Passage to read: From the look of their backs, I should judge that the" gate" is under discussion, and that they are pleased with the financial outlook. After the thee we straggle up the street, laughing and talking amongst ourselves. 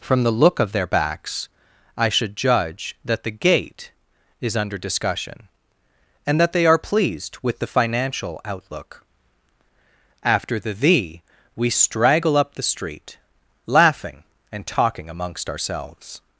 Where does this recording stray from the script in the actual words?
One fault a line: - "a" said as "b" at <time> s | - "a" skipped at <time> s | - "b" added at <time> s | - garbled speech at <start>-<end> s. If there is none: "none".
none